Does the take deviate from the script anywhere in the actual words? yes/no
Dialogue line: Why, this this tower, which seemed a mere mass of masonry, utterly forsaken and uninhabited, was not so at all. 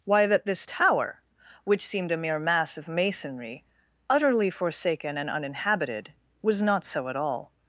yes